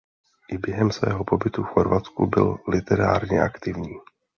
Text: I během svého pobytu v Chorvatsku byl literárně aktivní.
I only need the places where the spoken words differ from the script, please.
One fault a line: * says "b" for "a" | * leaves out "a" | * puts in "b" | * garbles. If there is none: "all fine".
all fine